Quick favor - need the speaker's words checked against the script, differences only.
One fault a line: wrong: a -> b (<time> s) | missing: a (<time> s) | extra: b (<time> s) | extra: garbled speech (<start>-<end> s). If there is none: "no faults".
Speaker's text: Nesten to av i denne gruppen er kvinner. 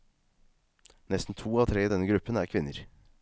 extra: tre (1.7 s)